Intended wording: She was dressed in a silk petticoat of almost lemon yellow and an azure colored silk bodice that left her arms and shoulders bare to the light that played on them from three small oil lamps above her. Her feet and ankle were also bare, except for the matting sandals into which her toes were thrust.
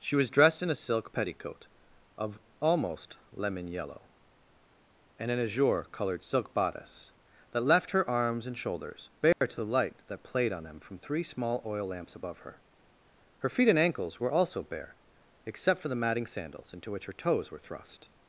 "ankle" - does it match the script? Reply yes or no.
no